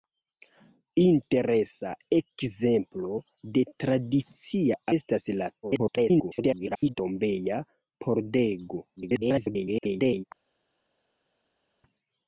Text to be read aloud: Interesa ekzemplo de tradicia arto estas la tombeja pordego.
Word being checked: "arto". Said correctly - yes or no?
no